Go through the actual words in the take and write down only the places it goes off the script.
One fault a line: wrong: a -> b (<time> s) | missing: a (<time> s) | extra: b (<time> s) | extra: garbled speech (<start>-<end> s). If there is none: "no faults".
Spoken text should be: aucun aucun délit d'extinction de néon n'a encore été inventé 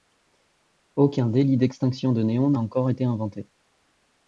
missing: aucun (1.3 s)